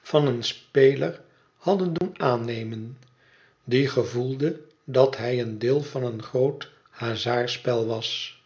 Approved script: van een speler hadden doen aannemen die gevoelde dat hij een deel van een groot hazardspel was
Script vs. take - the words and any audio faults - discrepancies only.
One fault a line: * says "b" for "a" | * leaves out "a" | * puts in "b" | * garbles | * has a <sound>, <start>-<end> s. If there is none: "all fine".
* has a dropout, 2.0-2.0 s